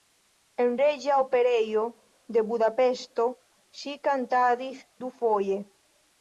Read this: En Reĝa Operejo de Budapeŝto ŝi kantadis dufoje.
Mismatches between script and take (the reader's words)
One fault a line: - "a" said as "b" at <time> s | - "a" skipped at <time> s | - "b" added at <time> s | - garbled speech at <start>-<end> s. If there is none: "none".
none